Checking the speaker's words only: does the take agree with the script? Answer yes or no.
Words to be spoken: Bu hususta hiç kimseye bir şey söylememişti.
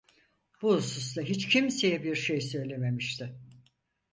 yes